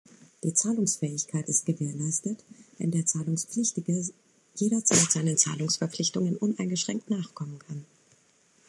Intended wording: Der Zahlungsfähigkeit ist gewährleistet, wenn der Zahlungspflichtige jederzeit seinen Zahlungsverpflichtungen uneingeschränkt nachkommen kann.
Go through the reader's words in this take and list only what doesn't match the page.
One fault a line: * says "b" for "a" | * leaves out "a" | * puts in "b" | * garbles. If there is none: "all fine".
* says "Die" for "Der"